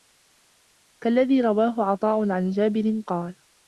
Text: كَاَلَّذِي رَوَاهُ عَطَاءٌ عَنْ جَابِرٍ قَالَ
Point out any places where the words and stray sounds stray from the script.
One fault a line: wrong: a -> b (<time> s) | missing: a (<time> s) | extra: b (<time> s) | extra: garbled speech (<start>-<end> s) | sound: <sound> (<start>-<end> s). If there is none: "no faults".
no faults